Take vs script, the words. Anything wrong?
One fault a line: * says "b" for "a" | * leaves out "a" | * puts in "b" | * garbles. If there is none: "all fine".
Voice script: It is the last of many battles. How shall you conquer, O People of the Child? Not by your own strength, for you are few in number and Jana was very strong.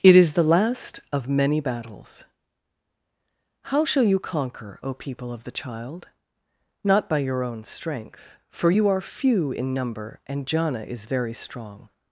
* says "is" for "was"